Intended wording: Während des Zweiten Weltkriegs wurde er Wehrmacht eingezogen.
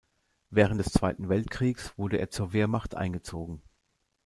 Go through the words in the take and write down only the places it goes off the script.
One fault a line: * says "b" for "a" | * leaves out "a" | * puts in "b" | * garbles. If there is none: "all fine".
* puts in "zur"